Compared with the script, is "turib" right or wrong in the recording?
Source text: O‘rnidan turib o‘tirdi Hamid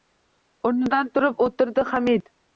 right